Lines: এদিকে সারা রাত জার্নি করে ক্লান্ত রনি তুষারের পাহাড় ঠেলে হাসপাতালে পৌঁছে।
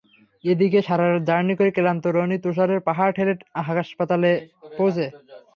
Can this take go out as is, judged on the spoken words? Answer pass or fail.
pass